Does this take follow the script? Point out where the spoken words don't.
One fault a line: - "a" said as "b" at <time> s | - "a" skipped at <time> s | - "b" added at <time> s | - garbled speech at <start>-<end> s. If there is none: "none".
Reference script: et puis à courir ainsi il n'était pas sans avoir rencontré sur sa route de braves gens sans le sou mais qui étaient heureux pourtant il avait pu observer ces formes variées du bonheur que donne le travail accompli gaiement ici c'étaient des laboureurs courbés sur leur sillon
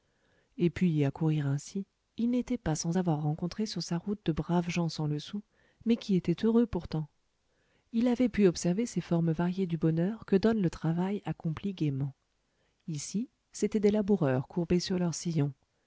none